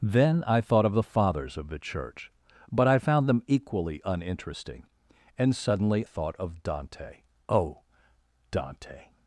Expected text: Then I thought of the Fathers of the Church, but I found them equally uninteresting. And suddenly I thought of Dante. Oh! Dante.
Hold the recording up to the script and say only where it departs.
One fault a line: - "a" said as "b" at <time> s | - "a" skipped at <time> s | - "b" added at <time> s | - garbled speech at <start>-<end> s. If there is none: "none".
- "I" skipped at 6.0 s